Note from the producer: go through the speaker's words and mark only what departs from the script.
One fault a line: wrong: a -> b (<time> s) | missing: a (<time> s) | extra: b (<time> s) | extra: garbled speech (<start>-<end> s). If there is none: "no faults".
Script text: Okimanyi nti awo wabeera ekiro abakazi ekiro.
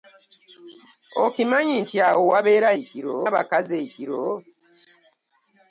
no faults